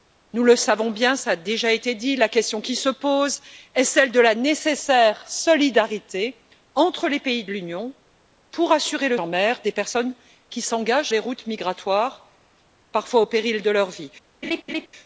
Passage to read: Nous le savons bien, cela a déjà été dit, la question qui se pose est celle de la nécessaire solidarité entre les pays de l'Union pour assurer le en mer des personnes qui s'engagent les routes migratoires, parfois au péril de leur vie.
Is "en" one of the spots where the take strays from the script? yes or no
no